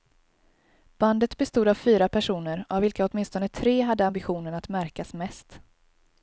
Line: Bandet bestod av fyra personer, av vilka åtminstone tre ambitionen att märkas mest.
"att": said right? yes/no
yes